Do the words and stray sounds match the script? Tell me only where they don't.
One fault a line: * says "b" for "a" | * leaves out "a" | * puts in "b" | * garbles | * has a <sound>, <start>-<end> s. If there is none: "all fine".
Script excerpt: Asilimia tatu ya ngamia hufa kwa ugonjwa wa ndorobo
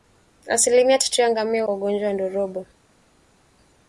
* leaves out "hufa"